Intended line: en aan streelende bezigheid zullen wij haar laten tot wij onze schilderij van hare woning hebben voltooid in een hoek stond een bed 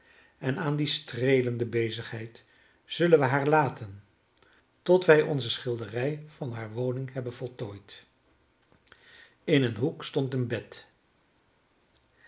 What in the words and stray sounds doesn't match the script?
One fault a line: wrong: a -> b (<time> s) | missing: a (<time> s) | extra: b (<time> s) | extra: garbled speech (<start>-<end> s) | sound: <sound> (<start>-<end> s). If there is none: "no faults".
extra: die (0.8 s)